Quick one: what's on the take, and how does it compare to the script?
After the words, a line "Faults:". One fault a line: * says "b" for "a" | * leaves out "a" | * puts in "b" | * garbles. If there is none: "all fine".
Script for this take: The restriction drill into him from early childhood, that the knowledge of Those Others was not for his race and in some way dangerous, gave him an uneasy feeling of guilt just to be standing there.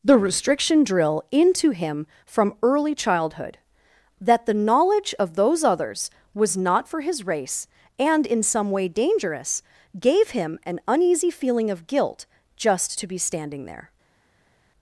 The restriction drill into him from early childhood, that the knowledge of Those Others was not for his race and in some way dangerous, gave him an uneasy feeling of guilt just to be standing there.
Faults:
all fine